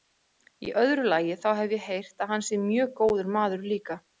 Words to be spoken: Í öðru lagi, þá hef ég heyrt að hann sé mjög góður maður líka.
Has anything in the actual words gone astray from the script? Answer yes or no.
no